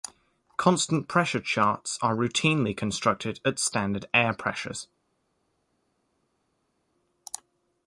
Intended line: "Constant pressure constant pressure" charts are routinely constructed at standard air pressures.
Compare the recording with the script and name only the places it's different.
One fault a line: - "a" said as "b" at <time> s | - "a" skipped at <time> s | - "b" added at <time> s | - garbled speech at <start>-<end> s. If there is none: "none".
- "constant pressure" skipped at 1.4 s